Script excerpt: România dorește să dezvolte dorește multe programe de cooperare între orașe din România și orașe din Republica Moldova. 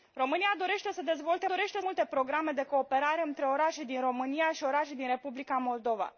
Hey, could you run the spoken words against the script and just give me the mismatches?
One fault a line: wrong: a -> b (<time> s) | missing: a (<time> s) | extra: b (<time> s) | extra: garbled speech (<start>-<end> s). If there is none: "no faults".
no faults